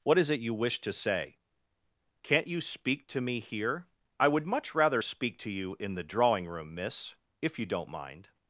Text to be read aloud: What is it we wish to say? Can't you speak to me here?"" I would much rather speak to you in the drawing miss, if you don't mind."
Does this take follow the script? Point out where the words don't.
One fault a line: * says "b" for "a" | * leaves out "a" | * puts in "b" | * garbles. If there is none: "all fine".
* says "you" for "we"
* puts in "room"